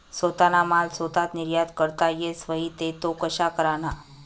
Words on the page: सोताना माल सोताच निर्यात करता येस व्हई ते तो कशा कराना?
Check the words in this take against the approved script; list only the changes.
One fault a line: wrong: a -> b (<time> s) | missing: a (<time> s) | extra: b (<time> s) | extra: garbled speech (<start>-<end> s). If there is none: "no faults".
no faults